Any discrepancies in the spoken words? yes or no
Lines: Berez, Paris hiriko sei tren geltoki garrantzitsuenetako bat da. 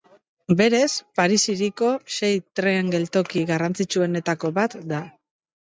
no